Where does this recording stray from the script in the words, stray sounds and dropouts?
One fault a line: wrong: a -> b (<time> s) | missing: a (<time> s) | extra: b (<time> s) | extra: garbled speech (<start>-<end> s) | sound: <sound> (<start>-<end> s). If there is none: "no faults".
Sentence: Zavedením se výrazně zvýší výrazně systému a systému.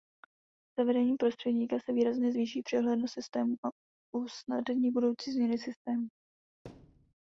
extra: prostředníka (1.2 s)
wrong: výrazně -> přehlednost (2.6 s)
extra: usnadní budoucí změny (4.2 s)
sound: thud (6.6-7.1 s)